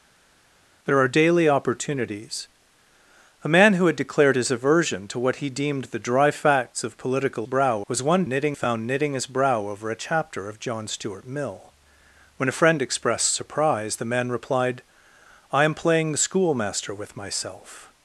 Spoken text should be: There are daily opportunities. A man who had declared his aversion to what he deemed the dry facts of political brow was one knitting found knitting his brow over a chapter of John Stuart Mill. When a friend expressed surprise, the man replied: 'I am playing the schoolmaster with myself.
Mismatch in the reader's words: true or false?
false